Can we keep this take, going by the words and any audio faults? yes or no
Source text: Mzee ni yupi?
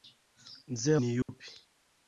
no